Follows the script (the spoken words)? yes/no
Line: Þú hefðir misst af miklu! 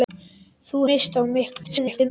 no